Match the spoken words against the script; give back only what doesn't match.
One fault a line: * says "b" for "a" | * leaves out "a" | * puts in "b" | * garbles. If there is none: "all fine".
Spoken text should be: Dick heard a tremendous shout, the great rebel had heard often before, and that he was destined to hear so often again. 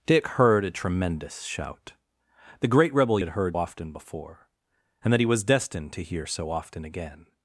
all fine